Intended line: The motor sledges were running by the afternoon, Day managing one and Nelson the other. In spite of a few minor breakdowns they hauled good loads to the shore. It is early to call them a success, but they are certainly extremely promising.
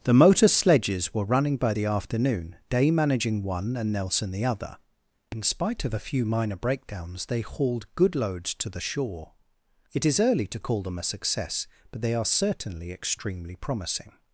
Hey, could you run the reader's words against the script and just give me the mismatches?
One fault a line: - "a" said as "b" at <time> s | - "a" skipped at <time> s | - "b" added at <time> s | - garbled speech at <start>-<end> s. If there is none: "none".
none